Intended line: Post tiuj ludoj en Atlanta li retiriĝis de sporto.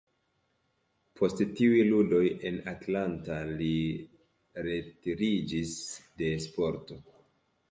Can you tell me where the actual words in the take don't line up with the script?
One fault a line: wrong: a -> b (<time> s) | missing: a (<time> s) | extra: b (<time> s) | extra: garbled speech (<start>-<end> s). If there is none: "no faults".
no faults